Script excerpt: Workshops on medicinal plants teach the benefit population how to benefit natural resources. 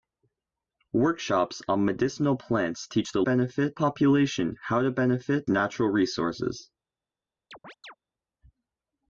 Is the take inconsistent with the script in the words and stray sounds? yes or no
yes